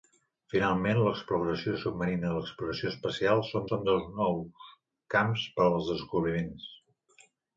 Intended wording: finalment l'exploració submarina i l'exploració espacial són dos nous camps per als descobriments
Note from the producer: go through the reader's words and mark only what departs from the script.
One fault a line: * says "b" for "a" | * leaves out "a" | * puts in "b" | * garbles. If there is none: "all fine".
* puts in "són"